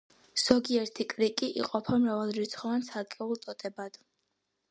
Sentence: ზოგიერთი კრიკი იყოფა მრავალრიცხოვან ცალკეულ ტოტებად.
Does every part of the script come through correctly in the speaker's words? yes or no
yes